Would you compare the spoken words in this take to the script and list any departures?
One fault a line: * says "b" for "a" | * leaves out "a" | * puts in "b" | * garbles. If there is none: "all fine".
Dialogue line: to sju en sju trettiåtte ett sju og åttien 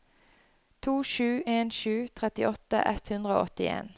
* says "hundre" for "sju"